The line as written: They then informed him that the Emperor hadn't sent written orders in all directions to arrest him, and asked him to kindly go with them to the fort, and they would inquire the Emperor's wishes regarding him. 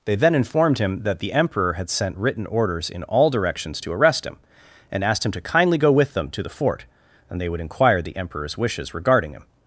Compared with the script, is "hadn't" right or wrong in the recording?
wrong